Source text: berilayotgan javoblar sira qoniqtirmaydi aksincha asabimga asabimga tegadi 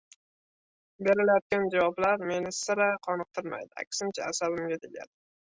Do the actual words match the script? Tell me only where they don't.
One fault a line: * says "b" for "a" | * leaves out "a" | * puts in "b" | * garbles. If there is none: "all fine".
* puts in "meni"
* leaves out "asabimga"